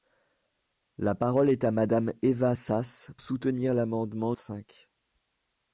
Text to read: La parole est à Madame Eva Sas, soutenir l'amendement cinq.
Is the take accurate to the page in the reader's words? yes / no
yes